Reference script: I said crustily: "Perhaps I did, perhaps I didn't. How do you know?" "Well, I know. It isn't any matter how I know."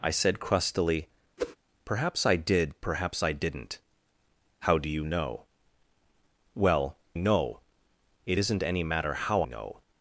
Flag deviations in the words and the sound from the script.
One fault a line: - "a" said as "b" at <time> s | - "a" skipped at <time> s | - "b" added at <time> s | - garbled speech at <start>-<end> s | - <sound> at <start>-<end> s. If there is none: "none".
- whoosh at 1.4-1.6 s
- "I" skipped at 7.0 s
- "I" skipped at 9.4 s